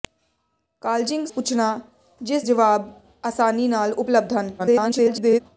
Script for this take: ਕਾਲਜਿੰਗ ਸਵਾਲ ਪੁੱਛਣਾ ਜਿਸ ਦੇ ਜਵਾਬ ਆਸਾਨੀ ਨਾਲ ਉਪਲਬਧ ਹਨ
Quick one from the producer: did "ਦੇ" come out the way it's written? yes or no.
no